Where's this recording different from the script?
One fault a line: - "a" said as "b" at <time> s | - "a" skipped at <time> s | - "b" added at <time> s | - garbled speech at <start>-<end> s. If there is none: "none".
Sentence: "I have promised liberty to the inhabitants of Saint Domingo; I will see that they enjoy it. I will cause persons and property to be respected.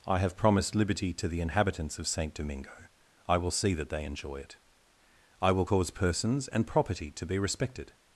none